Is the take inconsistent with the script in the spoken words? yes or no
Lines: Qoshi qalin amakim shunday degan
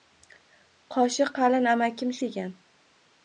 yes